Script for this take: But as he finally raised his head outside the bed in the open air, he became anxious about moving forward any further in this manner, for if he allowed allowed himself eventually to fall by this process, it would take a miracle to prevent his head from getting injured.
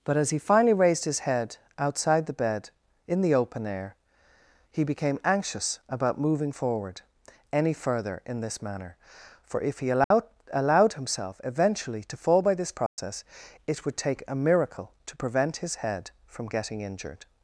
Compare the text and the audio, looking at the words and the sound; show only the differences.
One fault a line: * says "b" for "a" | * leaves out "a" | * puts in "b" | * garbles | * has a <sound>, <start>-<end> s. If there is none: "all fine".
* has a dropout, 10.0-10.1 s
* has a dropout, 12.9-13.0 s